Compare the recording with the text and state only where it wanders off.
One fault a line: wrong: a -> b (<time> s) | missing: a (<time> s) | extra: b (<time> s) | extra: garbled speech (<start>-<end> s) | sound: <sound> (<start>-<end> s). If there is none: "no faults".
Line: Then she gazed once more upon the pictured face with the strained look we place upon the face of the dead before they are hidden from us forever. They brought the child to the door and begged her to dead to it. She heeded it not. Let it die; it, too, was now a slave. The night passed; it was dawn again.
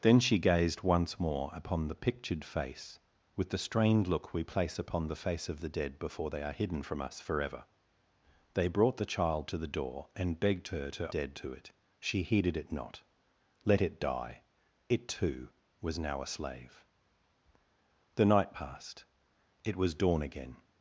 no faults